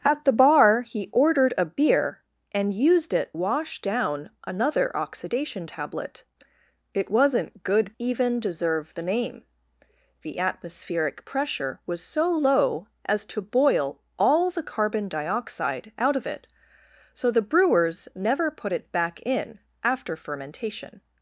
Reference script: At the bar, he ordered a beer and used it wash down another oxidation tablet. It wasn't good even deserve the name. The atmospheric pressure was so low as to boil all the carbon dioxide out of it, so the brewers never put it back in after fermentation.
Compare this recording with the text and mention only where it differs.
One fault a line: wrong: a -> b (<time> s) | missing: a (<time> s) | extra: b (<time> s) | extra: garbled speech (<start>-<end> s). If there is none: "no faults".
no faults